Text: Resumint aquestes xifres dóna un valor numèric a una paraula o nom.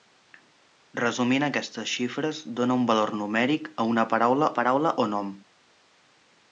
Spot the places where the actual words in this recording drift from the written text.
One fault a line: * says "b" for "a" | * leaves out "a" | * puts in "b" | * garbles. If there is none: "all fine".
* puts in "paraula"